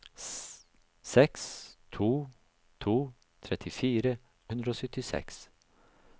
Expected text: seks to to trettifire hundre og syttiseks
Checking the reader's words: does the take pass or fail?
pass